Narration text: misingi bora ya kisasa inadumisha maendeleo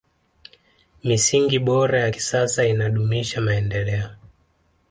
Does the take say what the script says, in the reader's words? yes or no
yes